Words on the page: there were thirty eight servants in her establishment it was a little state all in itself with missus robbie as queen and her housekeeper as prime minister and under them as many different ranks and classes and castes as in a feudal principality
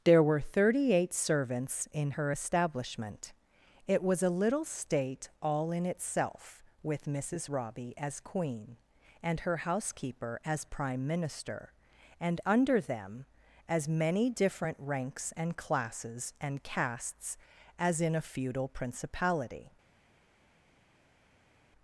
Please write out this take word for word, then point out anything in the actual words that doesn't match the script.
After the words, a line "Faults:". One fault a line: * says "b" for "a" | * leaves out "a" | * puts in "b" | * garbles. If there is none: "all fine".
there were thirty eight servants in her establishment it was a little state all in itself with missus robbie as queen and her housekeeper as prime minister and under them as many different ranks and classes and castes as in a feudal principality
Faults:
all fine